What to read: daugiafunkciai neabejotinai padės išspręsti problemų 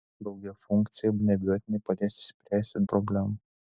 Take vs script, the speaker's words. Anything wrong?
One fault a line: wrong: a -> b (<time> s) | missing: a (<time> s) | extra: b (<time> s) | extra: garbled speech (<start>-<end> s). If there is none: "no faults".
no faults